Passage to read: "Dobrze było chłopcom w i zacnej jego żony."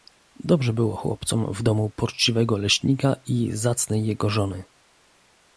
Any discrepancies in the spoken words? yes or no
yes